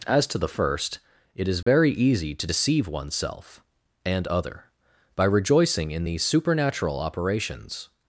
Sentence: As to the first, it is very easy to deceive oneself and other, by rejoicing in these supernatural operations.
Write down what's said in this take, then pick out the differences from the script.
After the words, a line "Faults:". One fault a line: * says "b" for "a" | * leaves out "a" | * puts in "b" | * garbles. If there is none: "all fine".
As to the first, it is very easy to deceive oneself and other, by rejoicing in these supernatural operations.
Faults:
all fine